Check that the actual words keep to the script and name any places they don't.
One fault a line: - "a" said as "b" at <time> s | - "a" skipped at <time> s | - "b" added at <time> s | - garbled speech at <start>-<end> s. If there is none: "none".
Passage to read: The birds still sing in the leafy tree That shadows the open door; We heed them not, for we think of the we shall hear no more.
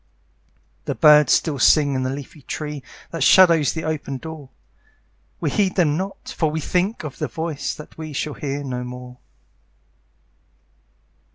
- "voice That" added at 7.3 s